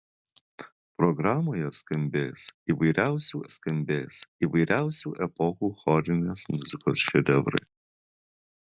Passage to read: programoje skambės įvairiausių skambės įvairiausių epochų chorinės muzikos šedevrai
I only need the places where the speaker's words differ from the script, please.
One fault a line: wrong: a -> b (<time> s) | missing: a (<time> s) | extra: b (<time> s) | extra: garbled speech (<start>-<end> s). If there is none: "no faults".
no faults